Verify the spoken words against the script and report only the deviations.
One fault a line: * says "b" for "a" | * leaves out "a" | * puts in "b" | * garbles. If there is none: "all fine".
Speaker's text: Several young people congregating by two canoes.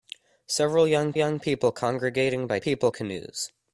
* puts in "young"
* says "people" for "two"